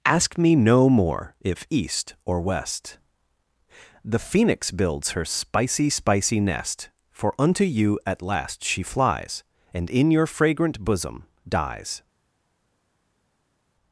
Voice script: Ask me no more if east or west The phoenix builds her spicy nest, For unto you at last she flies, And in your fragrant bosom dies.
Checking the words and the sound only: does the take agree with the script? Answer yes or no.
no